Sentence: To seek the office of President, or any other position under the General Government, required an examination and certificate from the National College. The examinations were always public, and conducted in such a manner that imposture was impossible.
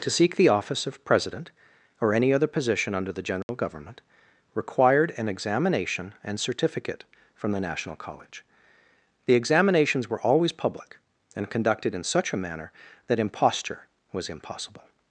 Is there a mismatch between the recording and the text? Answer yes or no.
no